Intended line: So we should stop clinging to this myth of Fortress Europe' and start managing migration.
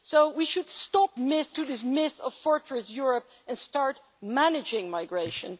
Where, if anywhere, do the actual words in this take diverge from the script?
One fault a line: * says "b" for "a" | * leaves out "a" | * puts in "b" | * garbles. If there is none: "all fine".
* says "myth" for "clinging"